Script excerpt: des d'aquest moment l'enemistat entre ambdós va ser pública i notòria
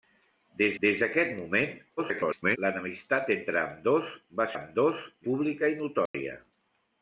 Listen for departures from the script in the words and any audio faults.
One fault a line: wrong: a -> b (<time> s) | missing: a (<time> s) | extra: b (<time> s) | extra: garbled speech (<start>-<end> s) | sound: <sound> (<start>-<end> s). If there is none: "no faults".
extra: des (0.8 s)
extra: garbled speech (2.0-2.6 s)
wrong: ser -> ambdós (4.5 s)
sound: dropout (6.1-6.1 s)